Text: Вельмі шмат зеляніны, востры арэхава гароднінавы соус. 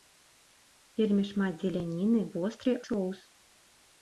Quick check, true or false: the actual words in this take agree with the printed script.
false